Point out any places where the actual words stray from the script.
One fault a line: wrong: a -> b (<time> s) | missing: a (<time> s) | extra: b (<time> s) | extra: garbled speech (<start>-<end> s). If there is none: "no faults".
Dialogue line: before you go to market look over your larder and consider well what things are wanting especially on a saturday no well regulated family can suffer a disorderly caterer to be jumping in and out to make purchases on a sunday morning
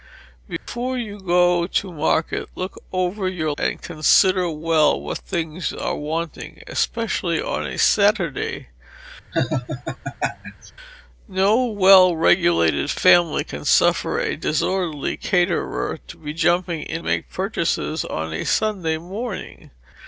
missing: larder (3.5 s)
missing: and out to (17.0 s)